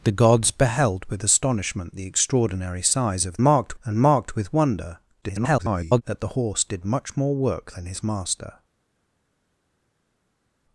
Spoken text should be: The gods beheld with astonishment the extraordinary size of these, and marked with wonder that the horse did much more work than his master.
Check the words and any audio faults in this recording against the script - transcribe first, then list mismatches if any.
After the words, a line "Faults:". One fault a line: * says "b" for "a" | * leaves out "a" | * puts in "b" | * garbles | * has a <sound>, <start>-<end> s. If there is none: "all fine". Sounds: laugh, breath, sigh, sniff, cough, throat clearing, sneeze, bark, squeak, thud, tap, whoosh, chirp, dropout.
The gods beheld with astonishment the extraordinary size of marked, and marked with wonder [garbled] that the horse did much more work than his master.
Faults:
* says "marked" for "these"
* garbles